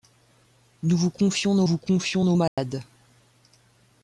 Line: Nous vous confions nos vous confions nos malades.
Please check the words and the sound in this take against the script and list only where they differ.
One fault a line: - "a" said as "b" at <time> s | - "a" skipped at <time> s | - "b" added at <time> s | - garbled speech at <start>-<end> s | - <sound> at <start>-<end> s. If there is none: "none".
- dropout at 2.5-2.6 s